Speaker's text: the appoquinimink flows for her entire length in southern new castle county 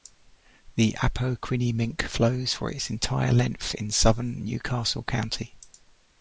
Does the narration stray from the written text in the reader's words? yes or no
yes